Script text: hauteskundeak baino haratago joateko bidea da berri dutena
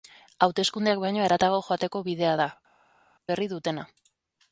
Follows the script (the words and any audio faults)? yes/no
yes